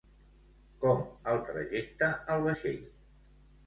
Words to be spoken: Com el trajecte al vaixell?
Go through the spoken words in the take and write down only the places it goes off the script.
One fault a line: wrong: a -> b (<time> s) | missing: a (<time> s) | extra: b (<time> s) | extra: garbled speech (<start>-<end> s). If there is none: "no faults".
no faults